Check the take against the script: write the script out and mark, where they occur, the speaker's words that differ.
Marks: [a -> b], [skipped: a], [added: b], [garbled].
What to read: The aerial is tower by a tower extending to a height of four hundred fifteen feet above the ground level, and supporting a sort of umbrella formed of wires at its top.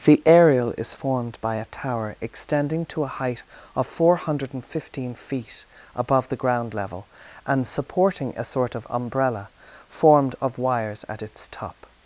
The aerial is [tower -> formed] by a tower extending to a height of four hundred fifteen feet above the ground level, and supporting a sort of umbrella formed of wires at its top.